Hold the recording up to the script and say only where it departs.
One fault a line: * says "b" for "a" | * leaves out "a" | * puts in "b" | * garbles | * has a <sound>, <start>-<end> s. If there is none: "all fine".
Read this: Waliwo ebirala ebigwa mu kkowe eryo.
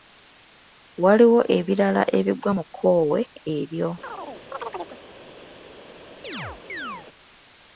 * has a chirp, 4.0-5.0 s
* has a chirp, 6.2-7.1 s